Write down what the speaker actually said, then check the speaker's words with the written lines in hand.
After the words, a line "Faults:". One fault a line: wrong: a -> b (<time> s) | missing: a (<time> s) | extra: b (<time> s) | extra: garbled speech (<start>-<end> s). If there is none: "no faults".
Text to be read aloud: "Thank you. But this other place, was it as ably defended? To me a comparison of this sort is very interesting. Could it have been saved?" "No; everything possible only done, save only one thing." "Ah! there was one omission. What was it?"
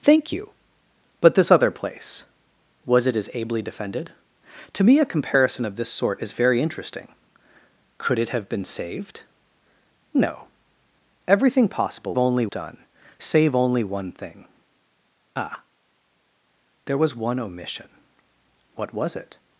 "Thank you. But this other place, was it as ably defended? To me a comparison of this sort is very interesting. Could it have been saved?" "No; everything possible only done, save only one thing." "Ah! there was one omission. What was it?"
Faults:
no faults